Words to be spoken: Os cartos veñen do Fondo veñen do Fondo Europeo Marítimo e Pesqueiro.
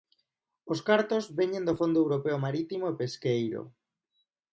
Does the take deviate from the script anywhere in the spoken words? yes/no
yes